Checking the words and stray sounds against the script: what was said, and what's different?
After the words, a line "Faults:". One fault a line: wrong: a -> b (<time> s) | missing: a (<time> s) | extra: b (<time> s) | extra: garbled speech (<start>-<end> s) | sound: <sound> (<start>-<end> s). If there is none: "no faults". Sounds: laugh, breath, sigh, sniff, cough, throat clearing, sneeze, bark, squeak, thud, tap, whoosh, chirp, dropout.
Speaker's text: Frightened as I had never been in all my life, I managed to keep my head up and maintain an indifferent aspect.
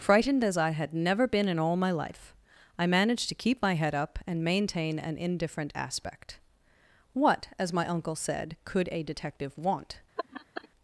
Frightened as I had never been in all my life, I managed to keep my head up and maintain an indifferent aspect. What, as my uncle said, could a detective want
Faults:
extra: What as my uncle said could a detective want (7.1 s)
sound: laugh (10.2-10.7 s)